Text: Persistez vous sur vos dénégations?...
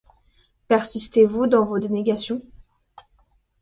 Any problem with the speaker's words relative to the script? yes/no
yes